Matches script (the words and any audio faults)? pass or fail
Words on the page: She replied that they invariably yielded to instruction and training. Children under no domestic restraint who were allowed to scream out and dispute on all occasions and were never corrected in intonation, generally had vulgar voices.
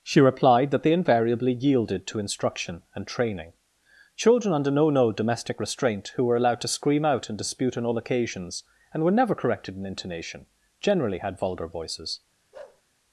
fail